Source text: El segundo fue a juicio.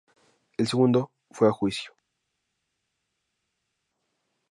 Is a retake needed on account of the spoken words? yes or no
no